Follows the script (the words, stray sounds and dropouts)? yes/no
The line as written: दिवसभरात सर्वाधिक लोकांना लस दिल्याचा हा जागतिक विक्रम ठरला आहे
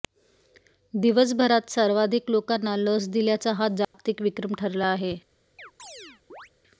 no